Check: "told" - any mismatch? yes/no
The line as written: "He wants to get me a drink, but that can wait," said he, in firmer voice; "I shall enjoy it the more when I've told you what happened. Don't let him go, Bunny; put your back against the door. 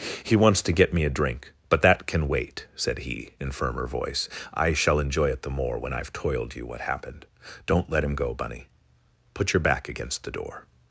yes